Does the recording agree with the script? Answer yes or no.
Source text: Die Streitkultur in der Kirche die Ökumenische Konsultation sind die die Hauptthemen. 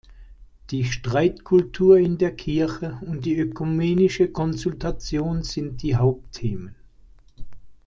no